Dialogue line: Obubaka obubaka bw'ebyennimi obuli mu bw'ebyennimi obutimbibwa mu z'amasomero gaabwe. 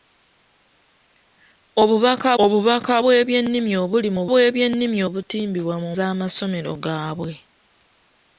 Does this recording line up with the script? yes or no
yes